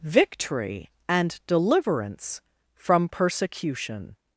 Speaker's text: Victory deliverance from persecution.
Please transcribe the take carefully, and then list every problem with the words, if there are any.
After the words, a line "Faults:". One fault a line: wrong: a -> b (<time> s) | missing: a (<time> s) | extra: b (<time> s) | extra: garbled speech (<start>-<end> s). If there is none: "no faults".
Victory and deliverance from persecution.
Faults:
extra: and (1.1 s)